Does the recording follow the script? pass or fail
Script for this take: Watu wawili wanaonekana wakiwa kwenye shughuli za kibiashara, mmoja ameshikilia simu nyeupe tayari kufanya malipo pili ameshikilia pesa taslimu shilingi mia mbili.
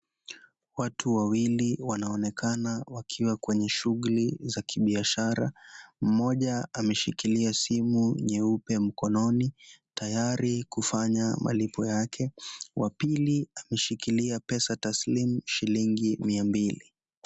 fail